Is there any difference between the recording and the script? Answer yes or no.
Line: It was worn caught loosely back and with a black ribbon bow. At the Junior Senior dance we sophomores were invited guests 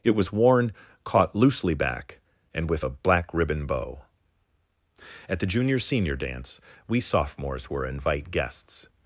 yes